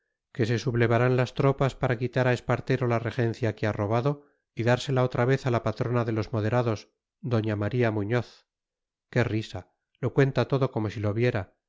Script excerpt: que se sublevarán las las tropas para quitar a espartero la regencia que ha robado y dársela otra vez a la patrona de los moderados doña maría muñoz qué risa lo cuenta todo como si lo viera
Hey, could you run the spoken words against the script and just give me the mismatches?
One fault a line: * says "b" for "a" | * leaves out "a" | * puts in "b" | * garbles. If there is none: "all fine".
* leaves out "las"